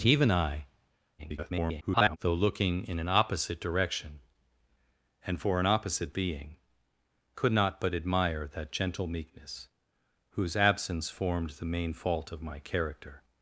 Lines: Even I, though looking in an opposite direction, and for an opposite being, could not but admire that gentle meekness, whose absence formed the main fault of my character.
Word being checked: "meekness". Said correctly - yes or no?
yes